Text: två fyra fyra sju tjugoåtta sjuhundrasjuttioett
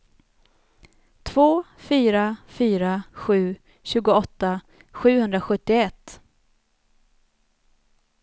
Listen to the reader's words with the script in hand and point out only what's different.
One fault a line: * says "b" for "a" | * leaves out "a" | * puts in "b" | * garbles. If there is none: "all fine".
all fine